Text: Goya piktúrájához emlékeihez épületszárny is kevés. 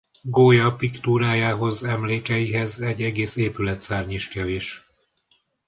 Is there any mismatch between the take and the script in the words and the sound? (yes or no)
yes